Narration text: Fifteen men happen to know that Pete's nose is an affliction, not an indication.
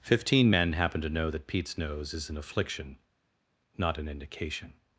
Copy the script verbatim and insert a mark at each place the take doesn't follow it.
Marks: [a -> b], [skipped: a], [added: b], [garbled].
Fifteen men happen to know that Pete's nose is an affliction, not an indication.